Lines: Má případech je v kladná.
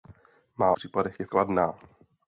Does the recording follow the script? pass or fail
pass